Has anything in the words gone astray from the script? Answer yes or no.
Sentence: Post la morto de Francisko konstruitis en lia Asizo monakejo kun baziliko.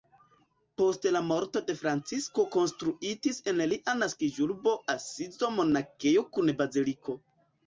yes